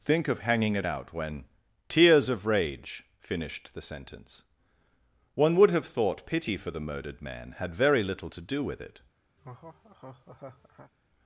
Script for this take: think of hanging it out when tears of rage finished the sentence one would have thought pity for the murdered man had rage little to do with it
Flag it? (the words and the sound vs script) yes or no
yes